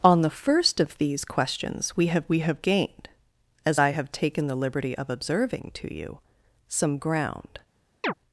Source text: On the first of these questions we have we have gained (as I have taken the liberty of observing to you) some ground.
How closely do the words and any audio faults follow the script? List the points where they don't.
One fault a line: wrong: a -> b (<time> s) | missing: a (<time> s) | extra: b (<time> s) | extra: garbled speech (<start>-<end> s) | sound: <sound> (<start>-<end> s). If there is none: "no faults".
sound: chirp (8.0-8.1 s)